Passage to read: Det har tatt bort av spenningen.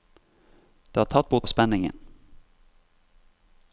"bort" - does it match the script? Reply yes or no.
yes